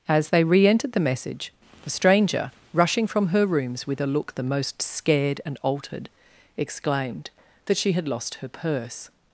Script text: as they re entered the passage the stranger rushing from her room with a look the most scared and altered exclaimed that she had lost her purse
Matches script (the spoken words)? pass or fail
fail